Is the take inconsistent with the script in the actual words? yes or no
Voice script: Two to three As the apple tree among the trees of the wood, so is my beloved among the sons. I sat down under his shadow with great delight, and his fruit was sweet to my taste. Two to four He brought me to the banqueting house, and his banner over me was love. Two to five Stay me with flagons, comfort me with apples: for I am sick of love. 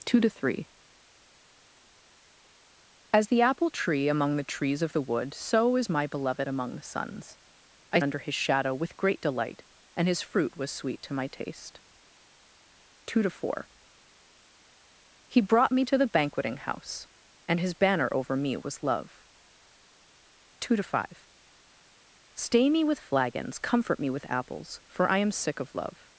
yes